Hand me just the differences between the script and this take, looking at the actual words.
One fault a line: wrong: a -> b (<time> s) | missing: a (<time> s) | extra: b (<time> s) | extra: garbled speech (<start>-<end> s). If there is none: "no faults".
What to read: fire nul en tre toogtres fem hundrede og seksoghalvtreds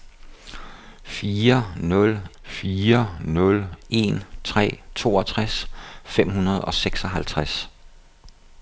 extra: fire nul (2.4 s)